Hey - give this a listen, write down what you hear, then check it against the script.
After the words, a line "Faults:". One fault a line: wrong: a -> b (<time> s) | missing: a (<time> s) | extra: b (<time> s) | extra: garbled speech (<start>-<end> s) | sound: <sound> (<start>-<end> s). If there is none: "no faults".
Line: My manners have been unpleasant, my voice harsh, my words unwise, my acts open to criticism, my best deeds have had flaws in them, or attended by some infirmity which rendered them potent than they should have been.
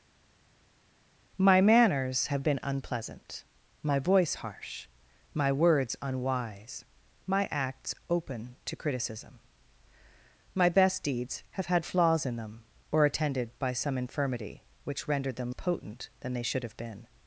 My manners have been unpleasant, my voice harsh, my words unwise, my acts open to criticism, my best deeds have had flaws in them, or attended by some infirmity which rendered them potent than they should have been.
Faults:
no faults